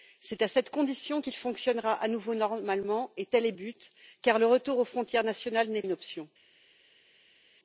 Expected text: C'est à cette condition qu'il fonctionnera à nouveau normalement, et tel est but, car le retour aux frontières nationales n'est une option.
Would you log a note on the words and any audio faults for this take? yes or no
no